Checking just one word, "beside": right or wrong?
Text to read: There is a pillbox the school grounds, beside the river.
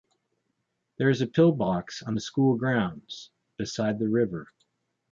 right